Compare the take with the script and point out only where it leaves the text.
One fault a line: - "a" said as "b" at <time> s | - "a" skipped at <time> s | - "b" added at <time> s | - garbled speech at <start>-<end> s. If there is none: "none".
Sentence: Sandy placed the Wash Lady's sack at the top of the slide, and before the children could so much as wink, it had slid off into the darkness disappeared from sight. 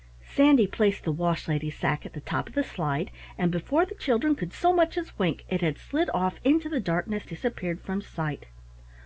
none